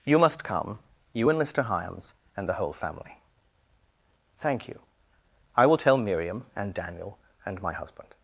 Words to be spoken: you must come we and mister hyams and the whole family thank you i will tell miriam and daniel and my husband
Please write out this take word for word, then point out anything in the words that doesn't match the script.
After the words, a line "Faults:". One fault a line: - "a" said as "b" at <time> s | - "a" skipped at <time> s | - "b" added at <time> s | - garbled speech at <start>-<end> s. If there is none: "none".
you must come you and mister hyams and the whole family thank you i will tell miriam and daniel and my husband
Faults:
- "we" said as "you" at 1.1 s